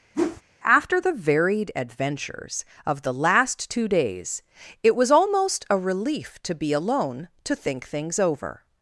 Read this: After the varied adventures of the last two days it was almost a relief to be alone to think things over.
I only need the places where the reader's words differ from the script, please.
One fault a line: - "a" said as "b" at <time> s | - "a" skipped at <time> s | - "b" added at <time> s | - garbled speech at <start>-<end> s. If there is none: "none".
none